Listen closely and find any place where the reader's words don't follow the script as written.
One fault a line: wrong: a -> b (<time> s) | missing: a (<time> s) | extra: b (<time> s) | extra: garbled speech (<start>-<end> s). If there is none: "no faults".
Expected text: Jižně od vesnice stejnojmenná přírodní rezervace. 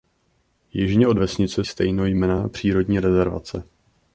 no faults